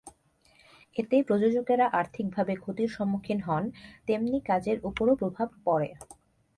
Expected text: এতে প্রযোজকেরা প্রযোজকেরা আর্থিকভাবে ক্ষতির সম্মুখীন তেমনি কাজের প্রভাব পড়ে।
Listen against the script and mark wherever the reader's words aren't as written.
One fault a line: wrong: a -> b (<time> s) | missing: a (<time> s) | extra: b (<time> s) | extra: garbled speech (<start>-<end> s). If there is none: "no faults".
missing: প্রযোজকেরা (1.9 s)
extra: হন (3.4 s)
extra: ওপরও (4.8 s)